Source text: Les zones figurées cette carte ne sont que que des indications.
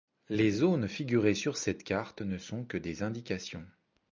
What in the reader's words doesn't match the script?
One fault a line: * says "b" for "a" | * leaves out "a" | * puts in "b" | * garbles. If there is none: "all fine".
* puts in "sur"
* leaves out "que"